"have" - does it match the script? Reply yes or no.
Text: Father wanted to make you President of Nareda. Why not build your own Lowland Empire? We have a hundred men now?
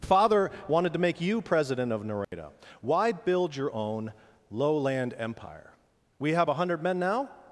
yes